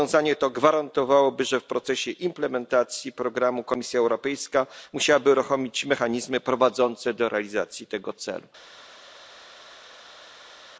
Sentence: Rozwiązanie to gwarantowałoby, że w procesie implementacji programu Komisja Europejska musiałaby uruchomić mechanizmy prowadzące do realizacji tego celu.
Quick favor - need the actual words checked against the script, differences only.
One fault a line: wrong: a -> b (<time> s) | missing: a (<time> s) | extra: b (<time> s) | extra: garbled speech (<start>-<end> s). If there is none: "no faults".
no faults